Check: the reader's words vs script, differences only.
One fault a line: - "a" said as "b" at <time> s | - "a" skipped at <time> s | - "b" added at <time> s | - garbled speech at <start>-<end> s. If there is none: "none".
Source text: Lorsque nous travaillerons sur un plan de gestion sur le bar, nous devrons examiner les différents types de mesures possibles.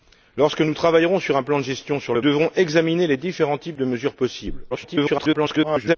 - "bar nous" skipped at 2.2 s
- garbled speech at 4.7-6.0 s